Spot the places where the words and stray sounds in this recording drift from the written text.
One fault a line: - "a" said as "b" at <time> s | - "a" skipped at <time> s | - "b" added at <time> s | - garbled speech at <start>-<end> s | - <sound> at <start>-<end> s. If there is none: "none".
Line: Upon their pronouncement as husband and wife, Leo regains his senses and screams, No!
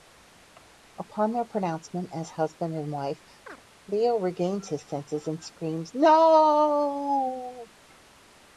- chirp at 3.5-3.6 s